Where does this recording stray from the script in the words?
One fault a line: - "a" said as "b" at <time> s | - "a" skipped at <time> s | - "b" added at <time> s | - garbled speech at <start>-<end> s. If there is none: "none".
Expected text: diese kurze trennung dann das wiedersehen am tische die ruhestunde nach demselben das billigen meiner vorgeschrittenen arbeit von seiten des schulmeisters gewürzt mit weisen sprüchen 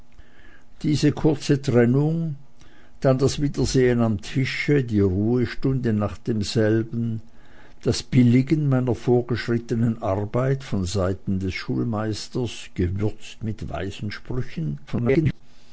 - garbled speech at 14.9-15.4 s